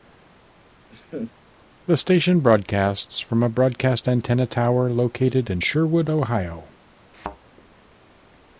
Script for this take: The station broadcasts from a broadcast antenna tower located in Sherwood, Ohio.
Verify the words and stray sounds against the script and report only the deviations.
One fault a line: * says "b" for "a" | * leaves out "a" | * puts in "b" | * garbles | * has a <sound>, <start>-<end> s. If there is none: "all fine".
* has a laugh, 0.9-1.3 s
* has a thud, 7.1-7.4 s